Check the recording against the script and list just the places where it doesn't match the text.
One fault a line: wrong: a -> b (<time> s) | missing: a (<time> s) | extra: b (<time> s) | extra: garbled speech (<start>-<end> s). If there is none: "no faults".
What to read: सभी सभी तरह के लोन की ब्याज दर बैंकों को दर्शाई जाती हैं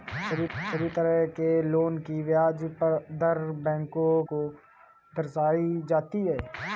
no faults